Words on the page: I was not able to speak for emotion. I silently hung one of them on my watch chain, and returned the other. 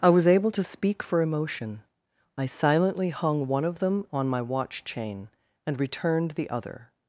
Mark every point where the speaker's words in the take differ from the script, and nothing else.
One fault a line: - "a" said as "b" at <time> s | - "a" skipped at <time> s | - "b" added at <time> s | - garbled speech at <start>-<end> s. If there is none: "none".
- "not" skipped at 0.3 s